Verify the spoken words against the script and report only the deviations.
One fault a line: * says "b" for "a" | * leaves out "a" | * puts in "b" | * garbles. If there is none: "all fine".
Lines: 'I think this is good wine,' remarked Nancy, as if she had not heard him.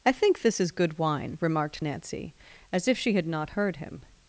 all fine